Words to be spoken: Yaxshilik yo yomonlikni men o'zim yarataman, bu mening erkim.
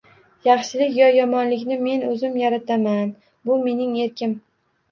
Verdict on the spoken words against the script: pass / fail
pass